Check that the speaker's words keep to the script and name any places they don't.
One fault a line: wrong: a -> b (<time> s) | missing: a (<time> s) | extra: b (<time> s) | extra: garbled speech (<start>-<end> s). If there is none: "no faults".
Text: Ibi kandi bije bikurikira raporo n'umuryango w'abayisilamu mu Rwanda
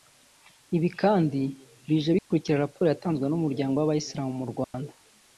extra: yatanzwe (2.9 s)